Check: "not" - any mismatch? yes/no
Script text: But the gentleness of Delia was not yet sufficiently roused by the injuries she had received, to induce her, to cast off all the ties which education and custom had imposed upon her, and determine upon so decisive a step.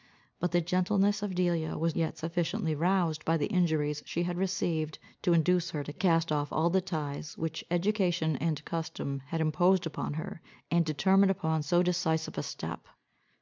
yes